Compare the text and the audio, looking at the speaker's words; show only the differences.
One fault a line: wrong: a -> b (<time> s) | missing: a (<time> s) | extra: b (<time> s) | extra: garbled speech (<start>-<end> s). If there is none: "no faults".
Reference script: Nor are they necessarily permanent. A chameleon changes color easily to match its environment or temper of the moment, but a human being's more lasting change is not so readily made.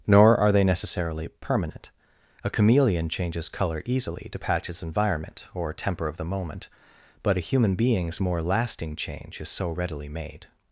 wrong: match -> patch (4.4 s)
missing: not (9.5 s)